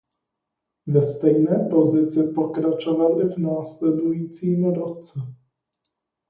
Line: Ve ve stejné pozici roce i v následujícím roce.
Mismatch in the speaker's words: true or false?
true